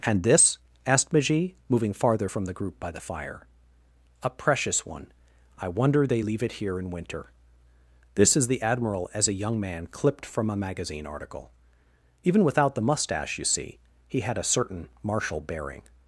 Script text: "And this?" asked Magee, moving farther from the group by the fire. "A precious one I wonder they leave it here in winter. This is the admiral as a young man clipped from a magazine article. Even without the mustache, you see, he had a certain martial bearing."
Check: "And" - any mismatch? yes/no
no